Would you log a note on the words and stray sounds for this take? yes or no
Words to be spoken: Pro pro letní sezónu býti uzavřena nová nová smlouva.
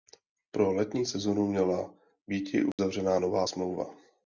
yes